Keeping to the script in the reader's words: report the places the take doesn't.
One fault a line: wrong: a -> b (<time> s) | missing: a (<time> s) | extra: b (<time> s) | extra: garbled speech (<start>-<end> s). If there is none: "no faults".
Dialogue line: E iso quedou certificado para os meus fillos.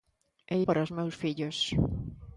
missing: iso quedou certificado (0.6 s)